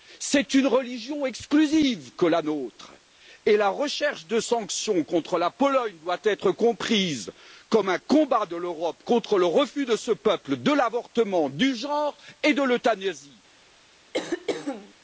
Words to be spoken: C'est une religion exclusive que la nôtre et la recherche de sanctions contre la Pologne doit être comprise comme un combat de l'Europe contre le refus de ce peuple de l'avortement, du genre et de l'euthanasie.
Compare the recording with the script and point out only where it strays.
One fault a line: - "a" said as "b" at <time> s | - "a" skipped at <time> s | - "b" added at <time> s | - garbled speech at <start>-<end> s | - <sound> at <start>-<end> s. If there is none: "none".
- throat clearing at 14.1-14.9 s